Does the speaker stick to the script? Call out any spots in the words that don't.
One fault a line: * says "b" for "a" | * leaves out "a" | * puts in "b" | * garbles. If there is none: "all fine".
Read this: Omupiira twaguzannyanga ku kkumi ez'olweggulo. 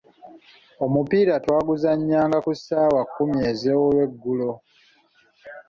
* puts in "ssaawa"